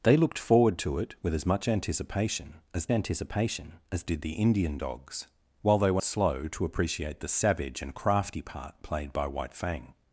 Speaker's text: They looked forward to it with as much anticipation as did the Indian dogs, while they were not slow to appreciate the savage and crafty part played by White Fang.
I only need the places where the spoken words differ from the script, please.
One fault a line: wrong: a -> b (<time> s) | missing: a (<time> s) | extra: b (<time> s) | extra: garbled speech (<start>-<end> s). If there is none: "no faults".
extra: anticipation as (2.9 s)
missing: not (6.0 s)